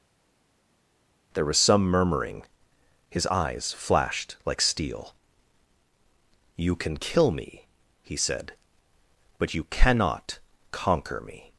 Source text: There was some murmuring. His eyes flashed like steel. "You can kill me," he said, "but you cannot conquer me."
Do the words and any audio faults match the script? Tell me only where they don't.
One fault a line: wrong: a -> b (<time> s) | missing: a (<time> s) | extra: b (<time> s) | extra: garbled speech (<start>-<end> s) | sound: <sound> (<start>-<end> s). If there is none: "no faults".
no faults